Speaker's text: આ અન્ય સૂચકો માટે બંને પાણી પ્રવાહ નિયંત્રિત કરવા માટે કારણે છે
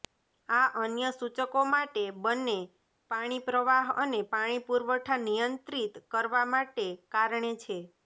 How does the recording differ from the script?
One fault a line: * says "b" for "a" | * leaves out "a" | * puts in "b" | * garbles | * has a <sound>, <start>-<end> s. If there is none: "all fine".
* puts in "અને પાણી પુરવઠા"